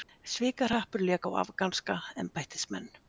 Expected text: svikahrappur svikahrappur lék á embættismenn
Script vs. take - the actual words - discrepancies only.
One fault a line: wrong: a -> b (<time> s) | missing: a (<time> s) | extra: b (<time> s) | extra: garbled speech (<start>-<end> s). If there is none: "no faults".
missing: svikahrappur (1.0 s)
extra: afganska (1.4 s)